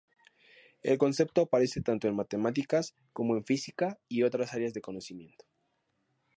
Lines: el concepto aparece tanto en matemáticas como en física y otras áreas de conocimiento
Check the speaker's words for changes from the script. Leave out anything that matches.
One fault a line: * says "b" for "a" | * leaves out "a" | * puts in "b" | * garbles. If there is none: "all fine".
all fine